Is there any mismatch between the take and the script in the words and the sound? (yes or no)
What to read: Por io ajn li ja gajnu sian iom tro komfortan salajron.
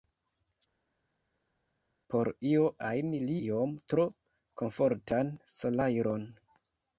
yes